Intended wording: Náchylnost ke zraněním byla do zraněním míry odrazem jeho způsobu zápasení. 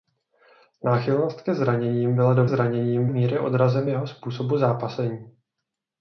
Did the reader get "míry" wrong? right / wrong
right